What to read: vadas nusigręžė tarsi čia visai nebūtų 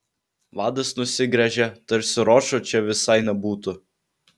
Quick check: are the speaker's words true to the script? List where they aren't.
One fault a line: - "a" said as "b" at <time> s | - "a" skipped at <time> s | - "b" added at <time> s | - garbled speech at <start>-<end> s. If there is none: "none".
- "ročo" added at 2.3 s